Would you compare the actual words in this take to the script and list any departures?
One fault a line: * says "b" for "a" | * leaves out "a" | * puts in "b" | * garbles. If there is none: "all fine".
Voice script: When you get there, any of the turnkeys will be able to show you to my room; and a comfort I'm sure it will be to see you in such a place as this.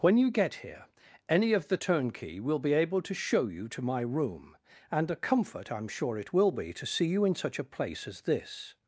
* says "here" for "there"
* says "turnkey" for "turnkeys"